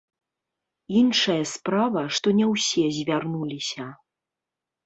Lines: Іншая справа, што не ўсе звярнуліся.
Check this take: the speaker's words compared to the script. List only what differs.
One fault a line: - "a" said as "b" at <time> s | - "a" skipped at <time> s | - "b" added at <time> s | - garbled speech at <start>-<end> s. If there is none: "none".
none